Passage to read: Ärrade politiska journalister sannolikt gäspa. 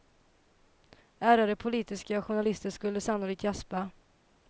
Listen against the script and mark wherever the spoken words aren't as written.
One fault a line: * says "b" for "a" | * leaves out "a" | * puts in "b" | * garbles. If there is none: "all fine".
* puts in "skulle"